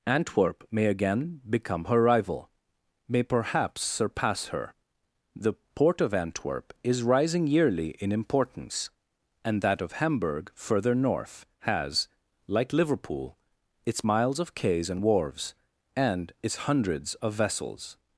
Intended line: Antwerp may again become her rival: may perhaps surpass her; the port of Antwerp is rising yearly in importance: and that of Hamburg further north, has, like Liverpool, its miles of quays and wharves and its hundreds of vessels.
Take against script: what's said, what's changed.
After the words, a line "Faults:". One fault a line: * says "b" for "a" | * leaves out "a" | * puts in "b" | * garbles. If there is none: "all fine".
Antwerp may again become her rival: may perhaps surpass her; the port of Antwerp is rising yearly in importance: and that of Hamburg further north, has, like Liverpool, its miles of quays and wharves and its hundreds of vessels.
Faults:
all fine